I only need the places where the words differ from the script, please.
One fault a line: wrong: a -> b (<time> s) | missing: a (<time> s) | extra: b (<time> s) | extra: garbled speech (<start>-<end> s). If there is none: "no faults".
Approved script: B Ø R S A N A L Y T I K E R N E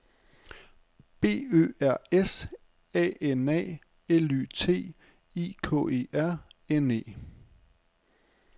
no faults